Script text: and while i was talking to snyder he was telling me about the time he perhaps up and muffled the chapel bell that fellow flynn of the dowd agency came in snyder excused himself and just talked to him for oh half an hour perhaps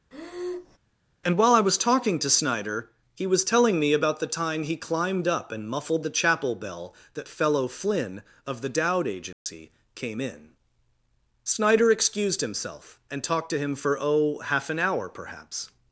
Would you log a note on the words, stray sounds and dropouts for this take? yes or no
yes